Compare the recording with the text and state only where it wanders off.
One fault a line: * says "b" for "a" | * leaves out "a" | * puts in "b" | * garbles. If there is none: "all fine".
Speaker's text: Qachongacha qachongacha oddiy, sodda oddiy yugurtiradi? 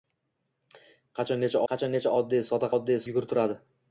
all fine